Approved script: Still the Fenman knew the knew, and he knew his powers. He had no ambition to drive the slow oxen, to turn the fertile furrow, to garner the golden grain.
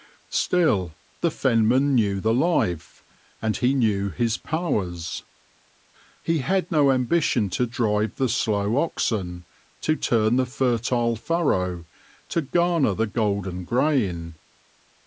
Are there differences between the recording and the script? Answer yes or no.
yes